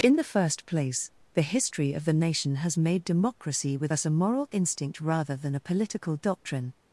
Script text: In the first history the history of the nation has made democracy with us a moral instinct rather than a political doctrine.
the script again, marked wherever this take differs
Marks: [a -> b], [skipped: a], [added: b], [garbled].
In the first [history -> place] the history of the nation has made democracy with us a moral instinct rather than a political doctrine.